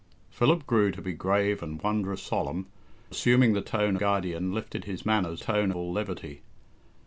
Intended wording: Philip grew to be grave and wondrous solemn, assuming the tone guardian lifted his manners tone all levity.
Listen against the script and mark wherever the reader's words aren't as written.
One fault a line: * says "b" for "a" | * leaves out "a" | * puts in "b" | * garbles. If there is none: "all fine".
all fine